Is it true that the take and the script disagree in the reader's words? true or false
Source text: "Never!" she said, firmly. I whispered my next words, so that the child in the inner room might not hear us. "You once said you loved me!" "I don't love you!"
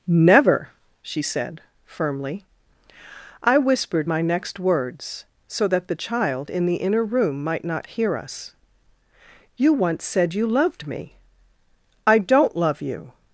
false